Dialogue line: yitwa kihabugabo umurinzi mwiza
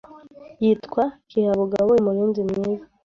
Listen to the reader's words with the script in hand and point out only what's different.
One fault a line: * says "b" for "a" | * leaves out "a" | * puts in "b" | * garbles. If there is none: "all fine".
all fine